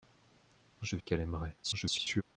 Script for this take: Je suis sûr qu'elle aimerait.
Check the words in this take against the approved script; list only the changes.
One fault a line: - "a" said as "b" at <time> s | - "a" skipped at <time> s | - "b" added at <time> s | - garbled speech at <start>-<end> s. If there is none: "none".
- "suis sûr" skipped at 1.0 s
- garbled speech at 1.6-2.2 s